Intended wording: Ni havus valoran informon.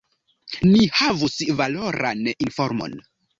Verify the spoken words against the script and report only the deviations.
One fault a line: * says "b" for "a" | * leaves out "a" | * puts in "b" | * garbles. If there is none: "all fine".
all fine